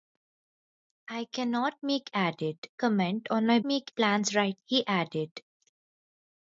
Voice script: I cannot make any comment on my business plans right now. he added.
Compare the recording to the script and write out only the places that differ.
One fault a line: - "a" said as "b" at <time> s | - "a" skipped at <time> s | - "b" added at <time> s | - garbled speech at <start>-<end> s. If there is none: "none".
- "any" said as "added" at 2.1 s
- "business" said as "make" at 3.6 s
- "now" skipped at 4.6 s